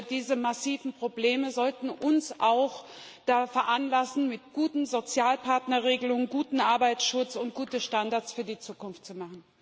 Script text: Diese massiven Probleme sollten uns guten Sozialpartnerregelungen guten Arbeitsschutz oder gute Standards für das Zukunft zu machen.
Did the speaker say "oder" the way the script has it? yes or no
no